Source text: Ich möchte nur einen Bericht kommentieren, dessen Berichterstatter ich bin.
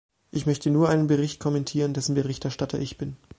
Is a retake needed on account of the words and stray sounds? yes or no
no